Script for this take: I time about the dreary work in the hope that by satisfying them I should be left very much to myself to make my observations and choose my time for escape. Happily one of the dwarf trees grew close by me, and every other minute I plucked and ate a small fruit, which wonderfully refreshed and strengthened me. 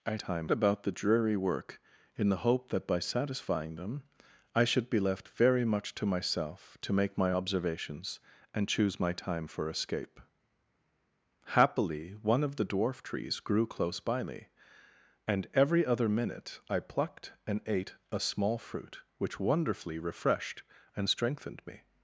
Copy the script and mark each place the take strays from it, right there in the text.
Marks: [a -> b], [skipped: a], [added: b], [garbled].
I time about the dreary work in the hope that by satisfying them I should be left very much to myself to make my observations and choose my time for escape. Happily one of the dwarf trees grew close by me, and every other minute I plucked and ate a small fruit, which wonderfully refreshed and strengthened me.